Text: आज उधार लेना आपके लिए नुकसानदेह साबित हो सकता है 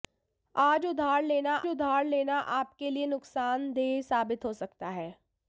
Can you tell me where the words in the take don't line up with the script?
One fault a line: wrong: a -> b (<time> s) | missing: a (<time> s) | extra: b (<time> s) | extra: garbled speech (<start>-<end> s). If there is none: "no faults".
extra: उधार लेना (1.7 s)